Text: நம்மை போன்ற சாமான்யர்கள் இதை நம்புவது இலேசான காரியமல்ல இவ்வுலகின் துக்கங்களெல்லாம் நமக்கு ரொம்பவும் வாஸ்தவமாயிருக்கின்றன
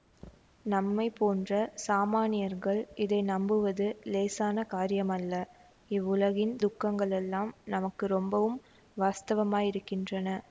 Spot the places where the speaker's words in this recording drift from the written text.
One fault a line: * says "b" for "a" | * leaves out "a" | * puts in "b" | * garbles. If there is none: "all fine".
all fine